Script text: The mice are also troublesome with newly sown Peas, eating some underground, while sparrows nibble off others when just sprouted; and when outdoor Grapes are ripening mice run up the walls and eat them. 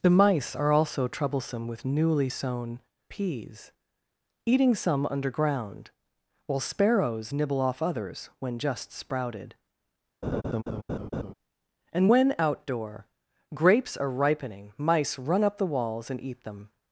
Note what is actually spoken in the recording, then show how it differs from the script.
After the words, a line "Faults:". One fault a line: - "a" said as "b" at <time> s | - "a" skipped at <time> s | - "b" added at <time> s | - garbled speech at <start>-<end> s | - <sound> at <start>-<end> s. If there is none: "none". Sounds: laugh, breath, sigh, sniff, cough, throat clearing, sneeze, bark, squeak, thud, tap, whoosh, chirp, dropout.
The mice are also troublesome with newly sown Peas, eating some underground, while sparrows nibble off others when just sprouted; and when outdoor Grapes are ripening mice run up the walls and eat them.
Faults:
- laugh at 10.2-11.3 s